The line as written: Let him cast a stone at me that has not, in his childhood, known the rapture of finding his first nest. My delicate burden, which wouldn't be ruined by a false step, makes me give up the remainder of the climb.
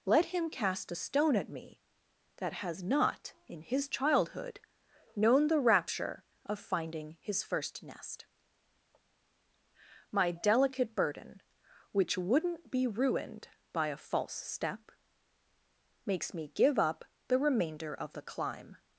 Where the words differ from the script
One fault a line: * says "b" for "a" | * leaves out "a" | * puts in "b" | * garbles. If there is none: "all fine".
all fine